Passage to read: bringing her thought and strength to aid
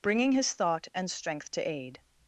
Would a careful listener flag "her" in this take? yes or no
yes